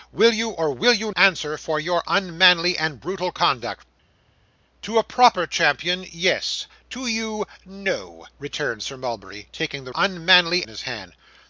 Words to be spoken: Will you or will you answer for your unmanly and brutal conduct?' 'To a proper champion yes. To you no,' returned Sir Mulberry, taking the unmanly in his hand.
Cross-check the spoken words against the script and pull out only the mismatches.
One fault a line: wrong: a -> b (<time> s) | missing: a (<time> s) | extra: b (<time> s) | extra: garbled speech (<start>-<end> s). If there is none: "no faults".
no faults